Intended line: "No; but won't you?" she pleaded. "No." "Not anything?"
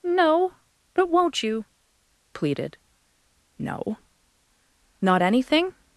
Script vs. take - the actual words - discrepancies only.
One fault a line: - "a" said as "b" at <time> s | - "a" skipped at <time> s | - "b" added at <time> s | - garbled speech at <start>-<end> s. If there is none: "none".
- "she" skipped at 1.6 s